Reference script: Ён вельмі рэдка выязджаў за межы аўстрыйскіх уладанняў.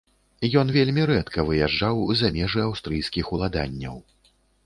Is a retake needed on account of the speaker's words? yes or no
no